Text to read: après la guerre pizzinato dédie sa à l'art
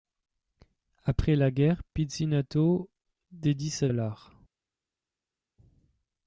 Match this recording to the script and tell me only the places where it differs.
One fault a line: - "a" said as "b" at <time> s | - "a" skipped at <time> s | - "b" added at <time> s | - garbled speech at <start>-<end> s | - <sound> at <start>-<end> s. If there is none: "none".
none